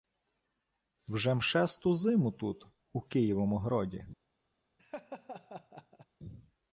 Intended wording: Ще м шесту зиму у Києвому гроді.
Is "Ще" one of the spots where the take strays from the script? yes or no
yes